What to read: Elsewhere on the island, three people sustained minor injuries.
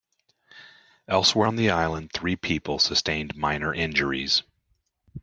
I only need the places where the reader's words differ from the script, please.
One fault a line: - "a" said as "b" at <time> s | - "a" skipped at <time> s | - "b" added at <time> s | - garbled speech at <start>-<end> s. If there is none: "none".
none